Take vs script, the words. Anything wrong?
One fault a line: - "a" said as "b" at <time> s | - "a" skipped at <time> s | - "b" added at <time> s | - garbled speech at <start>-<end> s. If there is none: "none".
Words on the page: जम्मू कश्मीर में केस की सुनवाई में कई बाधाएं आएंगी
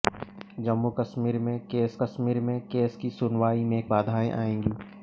- "कश्मीर में केस" added at 2.0 s
- "कई" skipped at 3.8 s